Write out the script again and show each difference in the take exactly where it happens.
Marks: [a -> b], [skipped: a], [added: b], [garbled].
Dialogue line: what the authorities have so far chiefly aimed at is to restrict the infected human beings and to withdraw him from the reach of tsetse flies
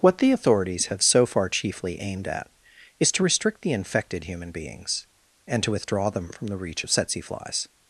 what the authorities have so far chiefly aimed at is to restrict the infected human beings and to withdraw [him -> them] from the reach of tsetse flies